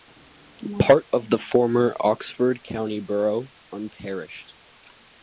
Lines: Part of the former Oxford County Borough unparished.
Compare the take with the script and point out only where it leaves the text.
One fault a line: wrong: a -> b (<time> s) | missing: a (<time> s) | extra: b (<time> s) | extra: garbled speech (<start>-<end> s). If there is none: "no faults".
no faults